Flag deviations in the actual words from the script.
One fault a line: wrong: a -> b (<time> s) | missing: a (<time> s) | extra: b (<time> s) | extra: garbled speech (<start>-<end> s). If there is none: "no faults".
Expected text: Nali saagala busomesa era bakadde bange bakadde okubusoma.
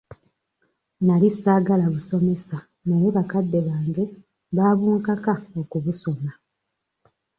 wrong: era -> naye (2.9 s)
wrong: bakadde -> baabunkaka (4.6 s)